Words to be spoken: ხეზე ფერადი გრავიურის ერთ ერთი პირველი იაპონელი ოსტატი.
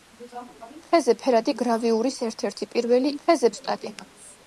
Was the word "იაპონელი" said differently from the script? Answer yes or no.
yes